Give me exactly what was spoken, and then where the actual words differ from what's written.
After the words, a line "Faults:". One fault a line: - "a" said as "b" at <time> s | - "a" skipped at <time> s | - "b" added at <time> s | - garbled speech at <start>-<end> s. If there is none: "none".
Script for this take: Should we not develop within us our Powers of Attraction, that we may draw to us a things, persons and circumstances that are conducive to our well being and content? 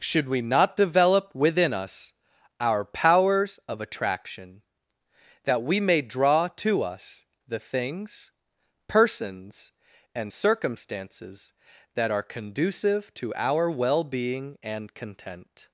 Should we not develop within us our Powers of Attraction, that we may draw to us the things, persons and circumstances that are conducive to our well being and content?
Faults:
- "a" said as "the" at 7.5 s